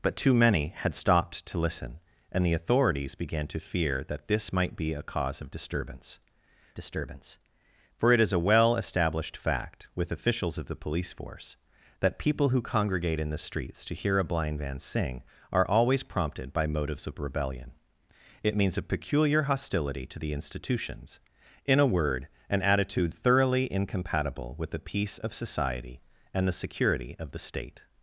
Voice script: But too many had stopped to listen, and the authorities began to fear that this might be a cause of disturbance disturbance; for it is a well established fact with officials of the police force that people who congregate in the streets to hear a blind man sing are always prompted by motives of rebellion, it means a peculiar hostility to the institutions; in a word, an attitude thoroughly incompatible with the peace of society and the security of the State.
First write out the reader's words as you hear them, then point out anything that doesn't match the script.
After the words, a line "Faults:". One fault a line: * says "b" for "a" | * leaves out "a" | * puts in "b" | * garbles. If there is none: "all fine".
But too many had stopped to listen, and the authorities began to fear that this might be a cause of disturbance disturbance; for it is a well established fact with officials of the police force that people who congregate in the streets to hear a blind man sing are always prompted by motives of rebellion, it means a peculiar hostility to the institutions; in a word, an attitude thoroughly incompatible with the peace of society and the security of the State.
Faults:
all fine